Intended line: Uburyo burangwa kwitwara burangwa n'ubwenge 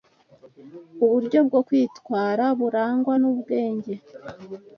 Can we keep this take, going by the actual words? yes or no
no